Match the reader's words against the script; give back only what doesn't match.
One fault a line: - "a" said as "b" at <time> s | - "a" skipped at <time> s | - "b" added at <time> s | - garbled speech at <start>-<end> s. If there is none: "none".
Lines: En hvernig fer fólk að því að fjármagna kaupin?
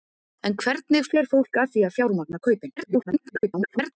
- garbled speech at 2.8-3.9 s